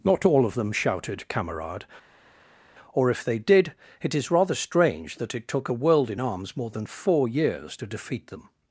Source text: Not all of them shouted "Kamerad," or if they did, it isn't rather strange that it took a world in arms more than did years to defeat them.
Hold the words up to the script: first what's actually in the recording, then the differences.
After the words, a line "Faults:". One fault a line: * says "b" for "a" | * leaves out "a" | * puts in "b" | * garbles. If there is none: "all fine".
Not all of them shouted "Kamerad," or if they did, it is rather strange that it took a world in arms more than four years to defeat them.
Faults:
* says "is" for "isn't"
* says "four" for "did"